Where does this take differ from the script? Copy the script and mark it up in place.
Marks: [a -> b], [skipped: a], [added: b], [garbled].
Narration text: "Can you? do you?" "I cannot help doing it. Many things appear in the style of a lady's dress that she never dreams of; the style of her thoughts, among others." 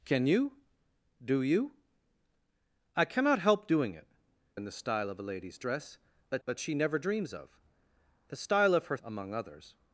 "Can you? do you?" "I cannot help doing it. [skipped: Many things appear] in the style of a lady's dress that [added: that] she never dreams of; the style of her [skipped: thoughts,] among others."